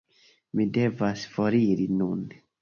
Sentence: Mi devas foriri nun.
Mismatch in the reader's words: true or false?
false